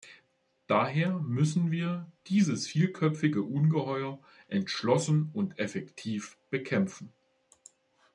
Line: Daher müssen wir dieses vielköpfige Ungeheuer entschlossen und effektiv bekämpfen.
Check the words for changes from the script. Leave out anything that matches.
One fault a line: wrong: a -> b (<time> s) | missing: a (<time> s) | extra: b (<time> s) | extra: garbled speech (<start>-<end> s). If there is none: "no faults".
no faults